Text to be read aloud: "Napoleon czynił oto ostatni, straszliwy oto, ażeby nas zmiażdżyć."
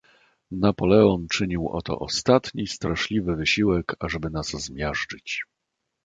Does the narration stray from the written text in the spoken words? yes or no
yes